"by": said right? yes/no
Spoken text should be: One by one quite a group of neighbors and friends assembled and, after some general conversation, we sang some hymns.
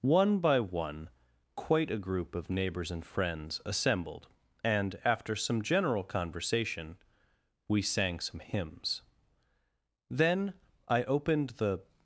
yes